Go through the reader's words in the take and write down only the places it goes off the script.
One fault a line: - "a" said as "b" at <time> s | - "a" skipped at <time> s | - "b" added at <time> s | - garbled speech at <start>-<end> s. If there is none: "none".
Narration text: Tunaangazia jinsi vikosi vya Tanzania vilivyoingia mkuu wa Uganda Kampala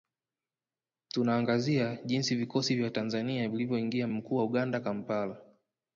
none